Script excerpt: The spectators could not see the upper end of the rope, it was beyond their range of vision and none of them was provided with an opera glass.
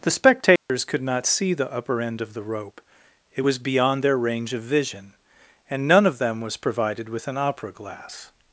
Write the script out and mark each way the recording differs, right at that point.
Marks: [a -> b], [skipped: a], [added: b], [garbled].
The spectators could not see the upper end of the rope, it was beyond their range of vision and none of them was provided with an opera glass.